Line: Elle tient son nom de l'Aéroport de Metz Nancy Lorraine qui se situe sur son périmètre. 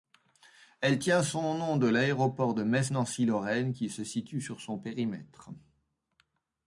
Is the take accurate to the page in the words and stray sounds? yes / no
yes